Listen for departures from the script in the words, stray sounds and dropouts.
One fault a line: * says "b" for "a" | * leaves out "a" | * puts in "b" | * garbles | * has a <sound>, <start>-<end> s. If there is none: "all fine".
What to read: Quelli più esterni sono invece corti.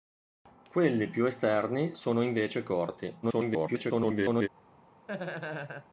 * garbles
* has a laugh, 5.1-5.9 s